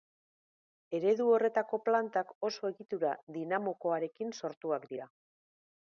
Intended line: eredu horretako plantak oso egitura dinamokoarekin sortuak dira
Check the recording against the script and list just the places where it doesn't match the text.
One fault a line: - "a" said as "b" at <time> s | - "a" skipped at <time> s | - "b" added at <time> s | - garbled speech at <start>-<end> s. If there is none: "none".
none